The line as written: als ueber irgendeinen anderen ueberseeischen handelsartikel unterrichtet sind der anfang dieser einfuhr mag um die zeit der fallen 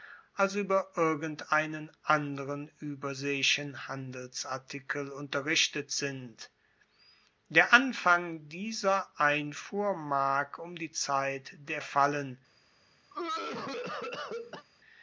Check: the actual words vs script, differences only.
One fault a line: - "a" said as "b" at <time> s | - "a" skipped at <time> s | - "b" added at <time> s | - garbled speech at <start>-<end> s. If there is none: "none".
none